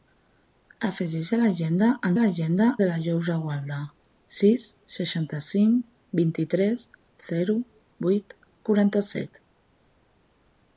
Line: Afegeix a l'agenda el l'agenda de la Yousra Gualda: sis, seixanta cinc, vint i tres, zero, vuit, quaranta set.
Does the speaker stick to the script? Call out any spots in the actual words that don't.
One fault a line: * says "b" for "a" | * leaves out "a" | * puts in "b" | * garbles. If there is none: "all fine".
all fine